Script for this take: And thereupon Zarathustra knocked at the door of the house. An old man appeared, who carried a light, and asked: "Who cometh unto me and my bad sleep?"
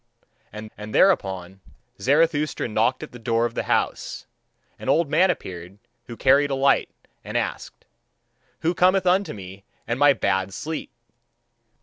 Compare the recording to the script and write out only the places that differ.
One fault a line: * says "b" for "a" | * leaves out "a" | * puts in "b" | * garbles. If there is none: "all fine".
* puts in "and"